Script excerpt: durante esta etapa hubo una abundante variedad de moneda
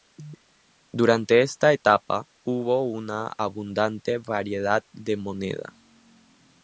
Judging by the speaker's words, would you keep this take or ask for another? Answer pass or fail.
pass